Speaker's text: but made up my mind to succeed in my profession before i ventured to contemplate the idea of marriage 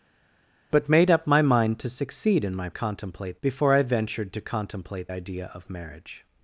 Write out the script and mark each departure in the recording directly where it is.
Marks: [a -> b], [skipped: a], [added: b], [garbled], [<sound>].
but made up my mind to succeed in my [profession -> contemplate] before i ventured to contemplate [skipped: the] idea of marriage